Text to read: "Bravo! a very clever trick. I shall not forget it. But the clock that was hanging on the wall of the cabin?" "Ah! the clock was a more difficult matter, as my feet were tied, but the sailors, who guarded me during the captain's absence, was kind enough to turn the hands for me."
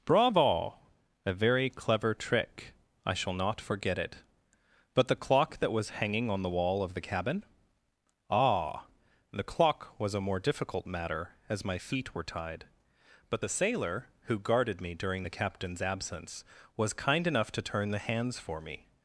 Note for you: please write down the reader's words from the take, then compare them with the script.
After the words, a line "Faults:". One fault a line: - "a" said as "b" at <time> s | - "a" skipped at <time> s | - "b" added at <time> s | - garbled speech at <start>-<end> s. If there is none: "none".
"Bravo! a very clever trick. I shall not forget it. But the clock that was hanging on the wall of the cabin?" "Ah! the clock was a more difficult matter, as my feet were tied, but the sailor, who guarded me during the captain's absence, was kind enough to turn the hands for me."
Faults:
- "sailors" said as "sailor" at 13.5 s